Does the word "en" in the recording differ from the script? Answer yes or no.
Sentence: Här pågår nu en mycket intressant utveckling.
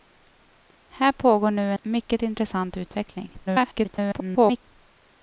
yes